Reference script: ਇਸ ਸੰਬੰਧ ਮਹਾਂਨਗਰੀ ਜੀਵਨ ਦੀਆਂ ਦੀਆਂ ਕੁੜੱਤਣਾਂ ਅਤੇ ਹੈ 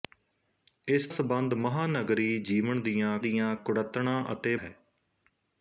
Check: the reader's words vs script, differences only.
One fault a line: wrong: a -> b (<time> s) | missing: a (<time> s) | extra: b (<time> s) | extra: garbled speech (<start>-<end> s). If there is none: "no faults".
no faults